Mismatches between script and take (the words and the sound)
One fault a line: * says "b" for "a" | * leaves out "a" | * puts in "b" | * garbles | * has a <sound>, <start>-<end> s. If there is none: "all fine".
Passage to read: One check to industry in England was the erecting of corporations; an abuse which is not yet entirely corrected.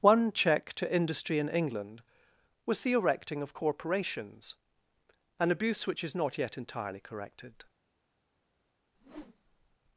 * has a whoosh, 8.9-9.8 s